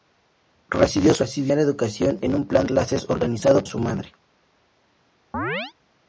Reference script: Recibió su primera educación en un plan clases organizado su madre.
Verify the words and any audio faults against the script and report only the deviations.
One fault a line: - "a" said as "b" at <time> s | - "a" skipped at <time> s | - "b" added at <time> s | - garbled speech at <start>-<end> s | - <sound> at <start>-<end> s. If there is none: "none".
- chirp at 5.3-5.7 s